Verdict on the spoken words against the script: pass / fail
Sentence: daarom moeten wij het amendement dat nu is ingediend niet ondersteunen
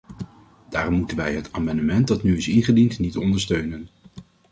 pass